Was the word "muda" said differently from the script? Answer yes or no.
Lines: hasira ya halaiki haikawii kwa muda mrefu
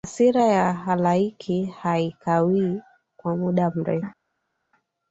no